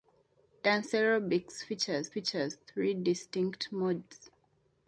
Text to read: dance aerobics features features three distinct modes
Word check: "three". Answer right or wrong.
right